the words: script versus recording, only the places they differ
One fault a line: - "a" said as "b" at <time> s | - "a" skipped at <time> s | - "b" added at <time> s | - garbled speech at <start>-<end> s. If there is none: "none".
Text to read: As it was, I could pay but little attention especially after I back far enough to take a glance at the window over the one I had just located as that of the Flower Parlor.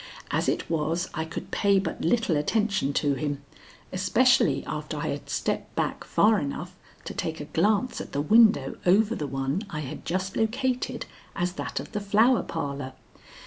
- "to him" added at 2.9 s
- "had stepped" added at 5.1 s